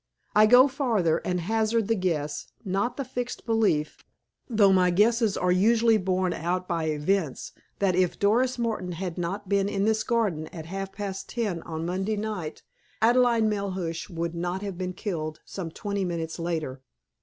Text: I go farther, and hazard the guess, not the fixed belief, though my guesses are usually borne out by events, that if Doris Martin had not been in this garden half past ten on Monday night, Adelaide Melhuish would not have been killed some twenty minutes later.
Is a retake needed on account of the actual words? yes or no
yes